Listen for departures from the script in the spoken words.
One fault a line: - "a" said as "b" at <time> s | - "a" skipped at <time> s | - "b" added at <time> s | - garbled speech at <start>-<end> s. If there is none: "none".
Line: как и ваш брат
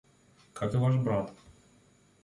none